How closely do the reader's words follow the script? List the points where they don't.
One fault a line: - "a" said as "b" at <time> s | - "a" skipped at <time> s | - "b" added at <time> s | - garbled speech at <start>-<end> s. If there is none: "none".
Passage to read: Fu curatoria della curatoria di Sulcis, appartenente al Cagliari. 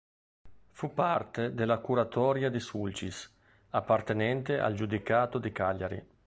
- "curatoria" said as "parte" at 0.9 s
- "Giudicato di" added at 4.7 s